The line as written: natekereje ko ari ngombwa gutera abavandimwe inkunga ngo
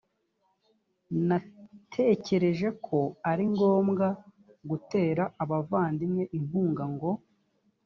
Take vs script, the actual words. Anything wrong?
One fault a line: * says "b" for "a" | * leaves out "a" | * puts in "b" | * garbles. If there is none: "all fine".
all fine